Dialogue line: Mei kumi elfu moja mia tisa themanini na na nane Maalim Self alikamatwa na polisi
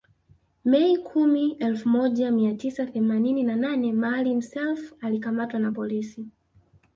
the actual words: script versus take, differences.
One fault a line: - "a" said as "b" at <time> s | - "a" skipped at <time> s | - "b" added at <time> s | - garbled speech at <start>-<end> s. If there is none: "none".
- "na" skipped at 3.5 s